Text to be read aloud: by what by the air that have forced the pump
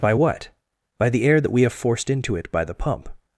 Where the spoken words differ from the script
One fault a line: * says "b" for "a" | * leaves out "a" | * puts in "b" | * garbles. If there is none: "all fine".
* puts in "we"
* puts in "into it by"